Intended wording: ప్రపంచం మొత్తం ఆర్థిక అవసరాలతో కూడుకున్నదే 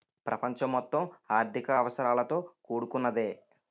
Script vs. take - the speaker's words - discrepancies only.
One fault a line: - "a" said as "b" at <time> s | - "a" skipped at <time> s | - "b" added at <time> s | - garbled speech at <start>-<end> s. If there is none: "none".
none